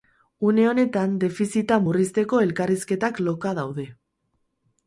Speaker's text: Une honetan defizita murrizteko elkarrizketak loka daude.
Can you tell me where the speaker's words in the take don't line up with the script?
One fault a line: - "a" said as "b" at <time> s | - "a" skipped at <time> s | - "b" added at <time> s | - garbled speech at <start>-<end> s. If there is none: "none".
none